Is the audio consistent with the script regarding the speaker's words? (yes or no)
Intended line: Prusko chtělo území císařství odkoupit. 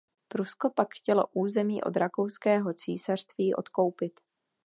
no